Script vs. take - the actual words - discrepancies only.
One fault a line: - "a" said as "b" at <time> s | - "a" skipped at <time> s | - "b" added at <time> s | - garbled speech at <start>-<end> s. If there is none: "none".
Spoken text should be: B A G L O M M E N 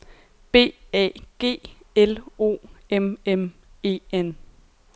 none